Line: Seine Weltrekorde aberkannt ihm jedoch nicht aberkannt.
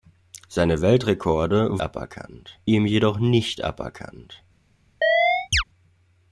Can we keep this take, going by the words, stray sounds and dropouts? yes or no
no